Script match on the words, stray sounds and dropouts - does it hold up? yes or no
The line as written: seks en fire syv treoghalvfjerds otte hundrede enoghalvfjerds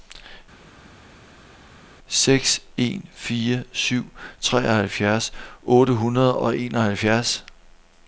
no